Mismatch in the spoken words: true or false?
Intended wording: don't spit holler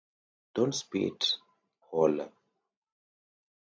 false